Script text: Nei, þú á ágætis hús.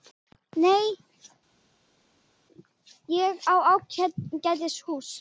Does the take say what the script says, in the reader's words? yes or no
no